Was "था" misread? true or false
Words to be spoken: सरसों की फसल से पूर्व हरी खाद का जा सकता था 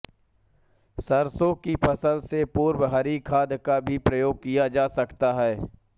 true